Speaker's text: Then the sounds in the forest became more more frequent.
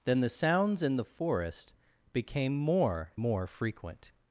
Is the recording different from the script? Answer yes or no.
no